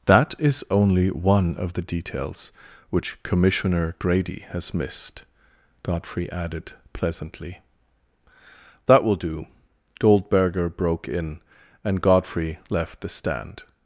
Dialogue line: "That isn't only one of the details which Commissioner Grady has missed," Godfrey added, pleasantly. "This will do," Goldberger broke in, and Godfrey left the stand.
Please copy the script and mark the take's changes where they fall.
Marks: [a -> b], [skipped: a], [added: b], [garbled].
"That [isn't -> is] only one of the details which Commissioner Grady has missed," Godfrey added, pleasantly. ["This -> That] will do," Goldberger broke in, and Godfrey left the stand.